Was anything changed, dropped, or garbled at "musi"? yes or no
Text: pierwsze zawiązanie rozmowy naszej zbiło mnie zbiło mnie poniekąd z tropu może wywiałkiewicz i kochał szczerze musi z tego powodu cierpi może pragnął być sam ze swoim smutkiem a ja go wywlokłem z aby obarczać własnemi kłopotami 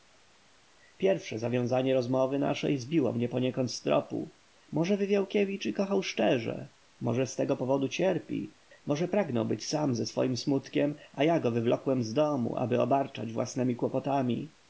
yes